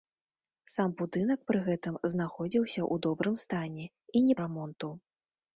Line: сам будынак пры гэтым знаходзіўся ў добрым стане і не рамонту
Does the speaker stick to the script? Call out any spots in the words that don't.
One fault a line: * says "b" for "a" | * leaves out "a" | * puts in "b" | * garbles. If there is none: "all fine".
all fine